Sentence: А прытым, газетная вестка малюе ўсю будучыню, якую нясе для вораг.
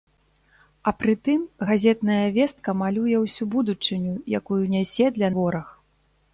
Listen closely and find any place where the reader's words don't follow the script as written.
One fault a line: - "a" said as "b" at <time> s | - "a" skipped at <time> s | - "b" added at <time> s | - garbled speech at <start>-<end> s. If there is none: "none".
none